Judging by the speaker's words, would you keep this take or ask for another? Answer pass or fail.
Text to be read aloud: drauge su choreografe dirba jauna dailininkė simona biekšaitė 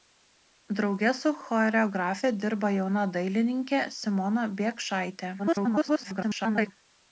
fail